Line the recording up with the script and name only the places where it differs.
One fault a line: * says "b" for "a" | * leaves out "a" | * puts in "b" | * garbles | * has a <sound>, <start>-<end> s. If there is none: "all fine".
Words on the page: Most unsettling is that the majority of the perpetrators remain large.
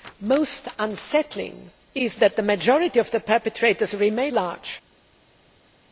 all fine